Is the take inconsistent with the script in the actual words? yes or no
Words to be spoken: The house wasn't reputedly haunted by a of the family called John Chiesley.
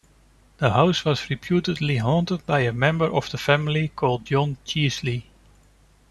yes